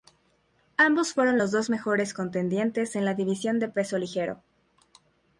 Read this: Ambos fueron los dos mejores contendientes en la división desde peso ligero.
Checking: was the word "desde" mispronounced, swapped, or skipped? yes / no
yes